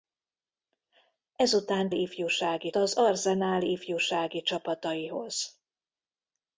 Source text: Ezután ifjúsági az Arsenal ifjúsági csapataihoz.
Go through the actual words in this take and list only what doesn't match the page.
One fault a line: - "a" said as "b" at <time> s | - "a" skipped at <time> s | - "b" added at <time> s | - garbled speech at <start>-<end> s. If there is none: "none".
none